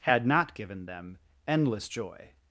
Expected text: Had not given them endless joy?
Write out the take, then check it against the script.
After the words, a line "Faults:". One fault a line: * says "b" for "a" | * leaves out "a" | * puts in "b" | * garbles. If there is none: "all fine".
Had not given them endless joy?
Faults:
all fine